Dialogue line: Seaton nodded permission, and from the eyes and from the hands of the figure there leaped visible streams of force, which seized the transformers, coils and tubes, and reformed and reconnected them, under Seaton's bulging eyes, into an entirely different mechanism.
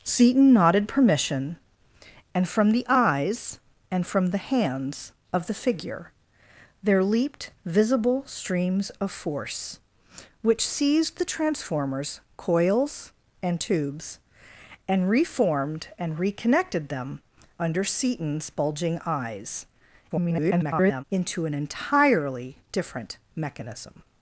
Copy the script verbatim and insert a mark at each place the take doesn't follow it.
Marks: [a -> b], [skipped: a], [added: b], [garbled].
Seaton nodded permission, and from the eyes and from the hands of the figure there leaped visible streams of force, which seized the transformers, coils and tubes, and reformed and reconnected them, under Seaton's bulging eyes, [garbled] into an entirely different mechanism.